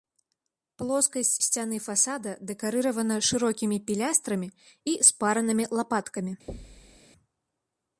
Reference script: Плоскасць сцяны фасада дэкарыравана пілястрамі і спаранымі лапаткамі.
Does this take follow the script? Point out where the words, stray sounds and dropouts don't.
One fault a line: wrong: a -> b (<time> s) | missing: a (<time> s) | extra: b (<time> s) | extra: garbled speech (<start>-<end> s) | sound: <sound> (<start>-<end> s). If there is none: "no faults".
extra: шырокімі (3.3 s)
sound: thud (6.5-7.0 s)